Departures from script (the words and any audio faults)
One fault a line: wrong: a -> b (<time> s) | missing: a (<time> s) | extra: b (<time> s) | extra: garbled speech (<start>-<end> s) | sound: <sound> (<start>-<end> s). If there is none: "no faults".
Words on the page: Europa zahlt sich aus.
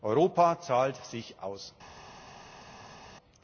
no faults